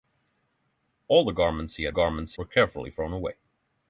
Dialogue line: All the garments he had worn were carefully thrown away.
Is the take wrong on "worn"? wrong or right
wrong